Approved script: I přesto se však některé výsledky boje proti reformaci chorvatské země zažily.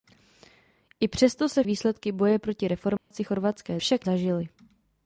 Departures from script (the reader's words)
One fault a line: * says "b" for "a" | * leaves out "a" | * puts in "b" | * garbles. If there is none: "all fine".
* leaves out "však některé"
* says "však" for "země"